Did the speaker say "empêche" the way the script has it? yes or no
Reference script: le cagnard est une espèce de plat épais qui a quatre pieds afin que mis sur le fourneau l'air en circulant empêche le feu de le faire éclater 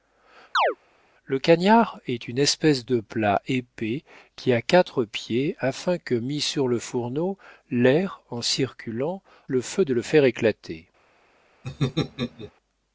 no